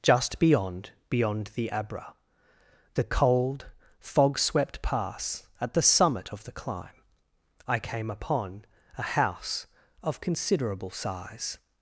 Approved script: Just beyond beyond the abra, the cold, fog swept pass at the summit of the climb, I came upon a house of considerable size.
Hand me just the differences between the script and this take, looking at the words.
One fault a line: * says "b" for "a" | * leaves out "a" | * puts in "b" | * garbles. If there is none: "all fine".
all fine